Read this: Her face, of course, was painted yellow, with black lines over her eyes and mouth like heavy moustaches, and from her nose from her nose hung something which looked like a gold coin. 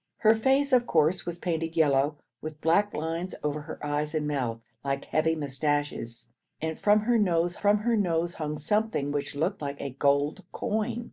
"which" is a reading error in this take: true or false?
false